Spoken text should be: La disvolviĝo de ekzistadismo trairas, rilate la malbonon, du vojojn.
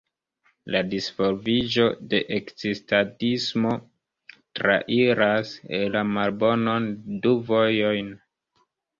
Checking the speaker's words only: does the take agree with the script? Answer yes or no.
no